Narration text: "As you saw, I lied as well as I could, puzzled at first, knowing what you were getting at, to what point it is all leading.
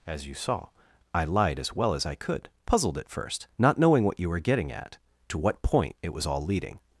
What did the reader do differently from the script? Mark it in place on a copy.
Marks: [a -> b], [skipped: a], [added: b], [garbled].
"As you saw, I lied as well as I could, puzzled at first, [added: not] knowing what you were getting at, to what point it [is -> was] all leading.